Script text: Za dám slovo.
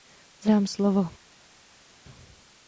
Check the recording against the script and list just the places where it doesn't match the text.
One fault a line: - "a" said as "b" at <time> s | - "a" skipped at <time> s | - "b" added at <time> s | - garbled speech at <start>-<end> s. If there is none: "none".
none